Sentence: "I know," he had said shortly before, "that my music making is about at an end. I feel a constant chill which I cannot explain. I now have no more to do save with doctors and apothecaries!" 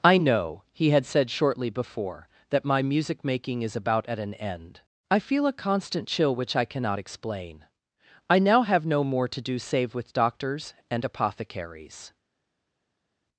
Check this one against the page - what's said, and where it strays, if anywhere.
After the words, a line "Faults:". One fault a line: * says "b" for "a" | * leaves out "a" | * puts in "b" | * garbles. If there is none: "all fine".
"I know," he had said shortly before, "that my music making is about at an end. I feel a constant chill which I cannot explain. I now have no more to do save with doctors and apothecaries!"
Faults:
all fine